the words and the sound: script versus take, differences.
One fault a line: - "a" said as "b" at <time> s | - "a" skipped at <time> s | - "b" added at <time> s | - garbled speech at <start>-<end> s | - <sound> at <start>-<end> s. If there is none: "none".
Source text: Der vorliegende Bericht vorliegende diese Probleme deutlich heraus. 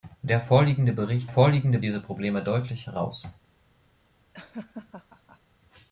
- laugh at 4.3-5.4 s